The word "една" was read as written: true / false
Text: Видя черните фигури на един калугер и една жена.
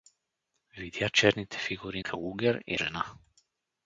false